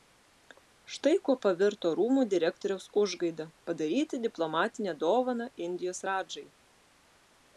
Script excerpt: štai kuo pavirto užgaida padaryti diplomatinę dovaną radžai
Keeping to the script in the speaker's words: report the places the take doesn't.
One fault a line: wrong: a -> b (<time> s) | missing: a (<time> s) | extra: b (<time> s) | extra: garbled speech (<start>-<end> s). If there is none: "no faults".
extra: rūmų direktoriaus (2.0 s)
extra: indijos (5.7 s)